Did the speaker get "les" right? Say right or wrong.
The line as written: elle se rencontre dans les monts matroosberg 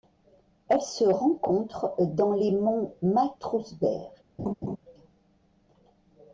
right